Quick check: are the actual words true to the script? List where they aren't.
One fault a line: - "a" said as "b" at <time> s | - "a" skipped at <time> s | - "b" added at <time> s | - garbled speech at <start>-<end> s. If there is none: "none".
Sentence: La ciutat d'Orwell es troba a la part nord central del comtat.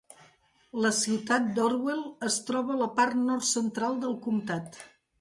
none